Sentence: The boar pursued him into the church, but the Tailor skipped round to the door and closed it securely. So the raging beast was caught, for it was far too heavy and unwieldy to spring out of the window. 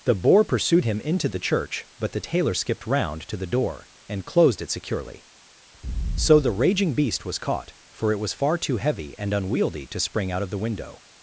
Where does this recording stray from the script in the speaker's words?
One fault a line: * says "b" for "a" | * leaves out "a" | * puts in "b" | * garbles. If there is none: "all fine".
all fine